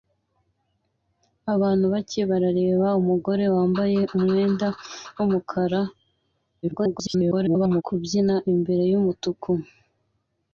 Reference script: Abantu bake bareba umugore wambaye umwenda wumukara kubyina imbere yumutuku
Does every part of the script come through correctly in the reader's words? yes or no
no